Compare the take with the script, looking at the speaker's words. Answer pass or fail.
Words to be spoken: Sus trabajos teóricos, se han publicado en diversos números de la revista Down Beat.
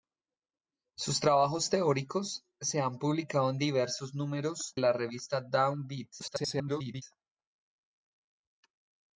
fail